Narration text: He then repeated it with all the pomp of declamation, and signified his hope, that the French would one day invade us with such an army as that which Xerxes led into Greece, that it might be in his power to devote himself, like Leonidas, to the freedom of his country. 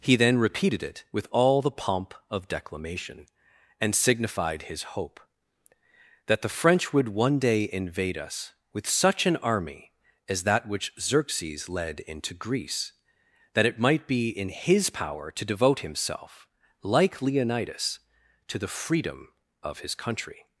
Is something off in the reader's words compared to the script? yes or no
no